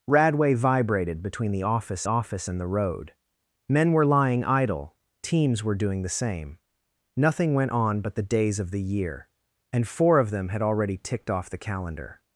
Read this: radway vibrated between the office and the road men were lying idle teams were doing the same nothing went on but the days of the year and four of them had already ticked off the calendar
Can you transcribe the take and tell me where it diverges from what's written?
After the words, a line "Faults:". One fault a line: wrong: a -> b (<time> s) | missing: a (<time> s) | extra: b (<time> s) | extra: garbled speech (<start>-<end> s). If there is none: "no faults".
radway vibrated between the office office and the road men were lying idle teams were doing the same nothing went on but the days of the year and four of them had already ticked off the calendar
Faults:
extra: office (2.1 s)